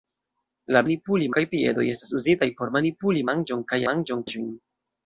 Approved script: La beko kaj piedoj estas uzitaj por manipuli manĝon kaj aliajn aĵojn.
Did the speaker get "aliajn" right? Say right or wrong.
wrong